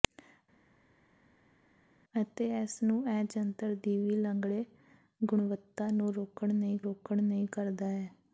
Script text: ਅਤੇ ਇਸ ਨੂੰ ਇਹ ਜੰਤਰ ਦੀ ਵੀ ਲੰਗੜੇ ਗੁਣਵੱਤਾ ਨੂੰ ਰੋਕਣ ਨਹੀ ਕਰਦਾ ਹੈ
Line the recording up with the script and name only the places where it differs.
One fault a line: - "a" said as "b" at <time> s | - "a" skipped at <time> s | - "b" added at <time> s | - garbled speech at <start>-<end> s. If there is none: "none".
- "ਰੋਕਣ ਨਹੀ" added at 6.8 s